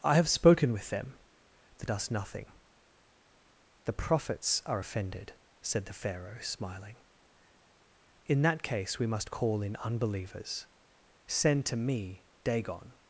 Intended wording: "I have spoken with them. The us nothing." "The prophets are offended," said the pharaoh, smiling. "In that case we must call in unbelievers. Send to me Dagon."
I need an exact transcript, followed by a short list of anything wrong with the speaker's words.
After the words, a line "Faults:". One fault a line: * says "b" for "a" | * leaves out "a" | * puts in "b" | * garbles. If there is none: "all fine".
"I have spoken with them. The us nothing." "The prophets are offended," said the pharaoh, smiling. "In that case we must call in unbelievers. Send to me Dagon."
Faults:
all fine